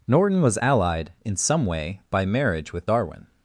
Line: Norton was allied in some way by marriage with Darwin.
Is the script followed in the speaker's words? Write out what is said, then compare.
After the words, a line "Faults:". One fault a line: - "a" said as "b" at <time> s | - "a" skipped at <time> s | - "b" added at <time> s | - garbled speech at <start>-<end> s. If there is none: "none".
Norton was allied in some way by marriage with Darwin.
Faults:
none